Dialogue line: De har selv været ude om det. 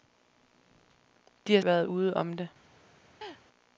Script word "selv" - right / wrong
wrong